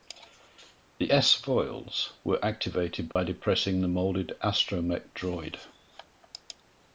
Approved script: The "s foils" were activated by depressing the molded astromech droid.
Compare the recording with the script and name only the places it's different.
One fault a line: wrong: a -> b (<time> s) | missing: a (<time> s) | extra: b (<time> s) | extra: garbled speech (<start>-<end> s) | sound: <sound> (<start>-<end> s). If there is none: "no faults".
sound: dropout (3.1-3.2 s)